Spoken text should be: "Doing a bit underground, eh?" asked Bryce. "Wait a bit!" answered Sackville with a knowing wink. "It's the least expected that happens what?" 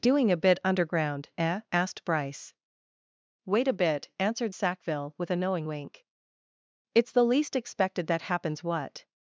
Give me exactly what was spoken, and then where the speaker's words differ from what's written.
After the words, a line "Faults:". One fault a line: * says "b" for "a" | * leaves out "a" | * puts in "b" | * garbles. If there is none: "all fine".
"Doing a bit underground, eh?" asked Bryce. "Wait a bit!" answered Sackville with a knowing wink. "It's the least expected that happens what?"
Faults:
all fine